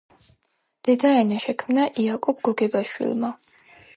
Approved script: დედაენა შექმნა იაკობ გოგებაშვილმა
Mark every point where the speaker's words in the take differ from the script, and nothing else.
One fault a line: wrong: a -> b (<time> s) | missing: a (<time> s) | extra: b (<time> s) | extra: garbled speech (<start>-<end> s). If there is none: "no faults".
no faults